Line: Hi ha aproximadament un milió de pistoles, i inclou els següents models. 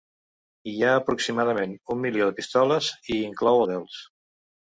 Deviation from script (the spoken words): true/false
true